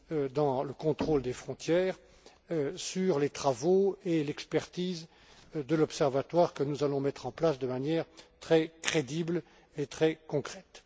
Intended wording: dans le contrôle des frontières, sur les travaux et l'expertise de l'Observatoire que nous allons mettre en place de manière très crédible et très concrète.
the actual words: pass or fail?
pass